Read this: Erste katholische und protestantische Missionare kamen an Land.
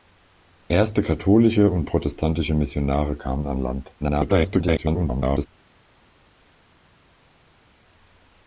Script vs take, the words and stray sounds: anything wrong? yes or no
yes